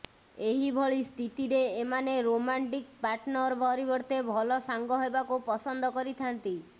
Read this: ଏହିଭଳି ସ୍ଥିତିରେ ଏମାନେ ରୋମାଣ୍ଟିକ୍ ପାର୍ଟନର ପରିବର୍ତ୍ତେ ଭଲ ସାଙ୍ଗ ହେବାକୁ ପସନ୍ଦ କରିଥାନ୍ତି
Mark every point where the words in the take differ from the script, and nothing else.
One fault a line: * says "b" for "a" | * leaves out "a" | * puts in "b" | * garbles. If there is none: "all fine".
all fine